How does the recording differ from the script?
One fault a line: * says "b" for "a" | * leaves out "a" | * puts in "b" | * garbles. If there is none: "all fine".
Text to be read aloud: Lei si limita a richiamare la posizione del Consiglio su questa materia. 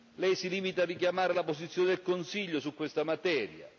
all fine